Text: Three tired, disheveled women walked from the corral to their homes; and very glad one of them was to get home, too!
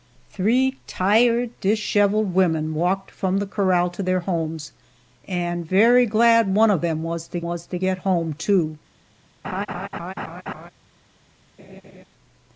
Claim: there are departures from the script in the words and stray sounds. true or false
true